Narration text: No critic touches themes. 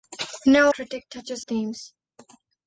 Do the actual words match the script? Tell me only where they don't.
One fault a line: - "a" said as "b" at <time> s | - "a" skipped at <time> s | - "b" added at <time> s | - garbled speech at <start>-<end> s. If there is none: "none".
none